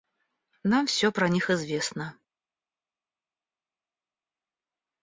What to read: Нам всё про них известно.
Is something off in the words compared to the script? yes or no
no